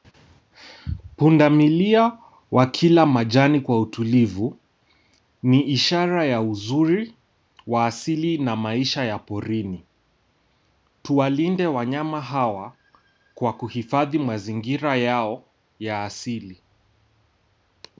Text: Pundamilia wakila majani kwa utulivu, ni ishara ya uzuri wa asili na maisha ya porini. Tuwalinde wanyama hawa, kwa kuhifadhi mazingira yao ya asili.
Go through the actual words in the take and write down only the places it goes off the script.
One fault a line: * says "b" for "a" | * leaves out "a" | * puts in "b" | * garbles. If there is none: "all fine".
all fine